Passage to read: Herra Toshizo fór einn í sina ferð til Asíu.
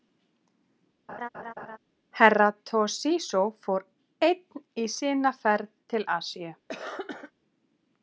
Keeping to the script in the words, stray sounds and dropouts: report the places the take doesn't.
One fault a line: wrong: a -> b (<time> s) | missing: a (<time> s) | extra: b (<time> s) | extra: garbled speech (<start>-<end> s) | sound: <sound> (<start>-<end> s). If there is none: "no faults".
sound: laugh (1.1-1.8 s)
sound: cough (6.7-7.3 s)